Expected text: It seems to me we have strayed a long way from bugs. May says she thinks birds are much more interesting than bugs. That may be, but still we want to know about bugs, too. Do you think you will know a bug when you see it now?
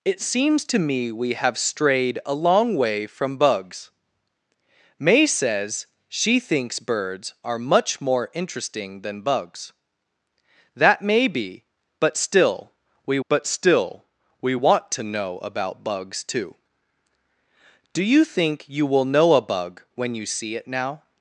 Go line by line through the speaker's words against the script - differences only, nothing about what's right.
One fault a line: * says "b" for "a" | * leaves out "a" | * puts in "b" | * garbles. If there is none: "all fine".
* puts in "but still we"